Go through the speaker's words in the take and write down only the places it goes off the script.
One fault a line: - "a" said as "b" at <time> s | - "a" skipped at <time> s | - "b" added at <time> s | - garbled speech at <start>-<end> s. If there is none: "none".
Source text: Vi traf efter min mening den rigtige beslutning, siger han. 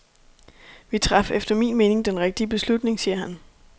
none